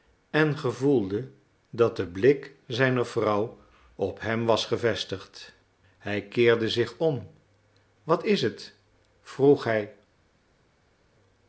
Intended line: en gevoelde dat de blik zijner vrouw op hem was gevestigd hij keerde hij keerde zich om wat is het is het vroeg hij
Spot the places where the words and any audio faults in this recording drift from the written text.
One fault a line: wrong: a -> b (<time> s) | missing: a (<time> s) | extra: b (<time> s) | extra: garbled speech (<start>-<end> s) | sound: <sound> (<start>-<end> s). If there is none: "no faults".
missing: hij keerde (6.7 s)
missing: is het (8.7 s)